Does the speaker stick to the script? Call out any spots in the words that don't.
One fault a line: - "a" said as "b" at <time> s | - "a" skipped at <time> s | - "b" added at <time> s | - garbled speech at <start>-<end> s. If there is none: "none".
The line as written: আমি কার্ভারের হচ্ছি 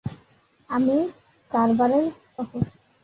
none